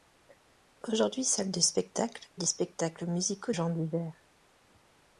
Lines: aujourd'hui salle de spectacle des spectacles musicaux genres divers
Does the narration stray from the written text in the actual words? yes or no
no